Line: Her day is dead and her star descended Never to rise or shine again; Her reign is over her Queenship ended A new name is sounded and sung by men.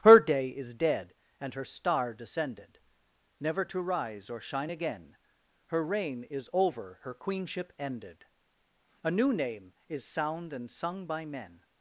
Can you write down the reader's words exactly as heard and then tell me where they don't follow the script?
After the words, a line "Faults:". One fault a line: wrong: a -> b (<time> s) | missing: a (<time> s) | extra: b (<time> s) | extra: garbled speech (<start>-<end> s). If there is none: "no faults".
Her day is dead and her star descended Never to rise or shine again; Her reign is over her Queenship ended A new name is sound and sung by men.
Faults:
wrong: sounded -> sound (10.0 s)